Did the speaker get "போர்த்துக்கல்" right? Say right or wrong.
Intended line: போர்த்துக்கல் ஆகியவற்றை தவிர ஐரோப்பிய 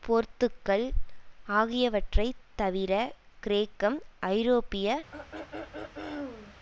right